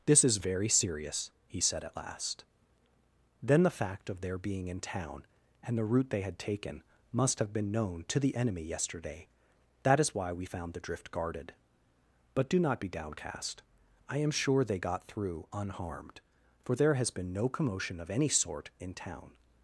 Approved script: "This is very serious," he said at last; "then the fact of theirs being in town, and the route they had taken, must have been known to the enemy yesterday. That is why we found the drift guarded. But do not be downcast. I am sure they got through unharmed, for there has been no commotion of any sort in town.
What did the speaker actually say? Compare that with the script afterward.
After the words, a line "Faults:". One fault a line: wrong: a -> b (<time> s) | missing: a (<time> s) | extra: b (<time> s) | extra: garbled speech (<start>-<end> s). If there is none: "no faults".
"This is very serious," he said at last; "then the fact of their being in town, and the route they had taken, must have been known to the enemy yesterday. That is why we found the drift guarded. But do not be downcast. I am sure they got through unharmed, for there has been no commotion of any sort in town.
Faults:
wrong: theirs -> their (4.2 s)